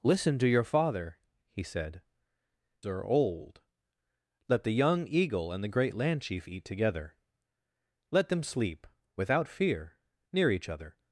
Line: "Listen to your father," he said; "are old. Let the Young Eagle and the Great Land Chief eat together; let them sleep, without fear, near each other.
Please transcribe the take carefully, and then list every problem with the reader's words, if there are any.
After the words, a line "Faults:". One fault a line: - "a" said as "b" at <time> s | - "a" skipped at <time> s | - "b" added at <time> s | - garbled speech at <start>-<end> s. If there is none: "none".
"Listen to your father," he said; "are old. Let the Young Eagle and the Great Land Chief eat together; let them sleep, without fear, near each other.
Faults:
none